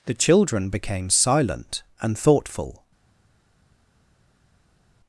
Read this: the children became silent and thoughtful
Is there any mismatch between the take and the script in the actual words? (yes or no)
no